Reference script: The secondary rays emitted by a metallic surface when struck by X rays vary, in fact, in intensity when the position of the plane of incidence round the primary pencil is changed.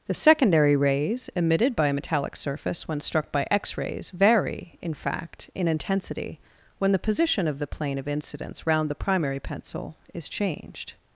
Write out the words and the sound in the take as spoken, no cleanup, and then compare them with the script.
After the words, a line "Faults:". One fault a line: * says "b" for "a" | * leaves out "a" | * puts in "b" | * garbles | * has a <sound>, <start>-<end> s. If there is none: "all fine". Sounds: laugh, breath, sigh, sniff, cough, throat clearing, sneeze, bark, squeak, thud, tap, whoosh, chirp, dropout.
The secondary rays emitted by a metallic surface when struck by X rays vary, in fact, in intensity when the position of the plane of incidence round the primary pencil is changed.
Faults:
all fine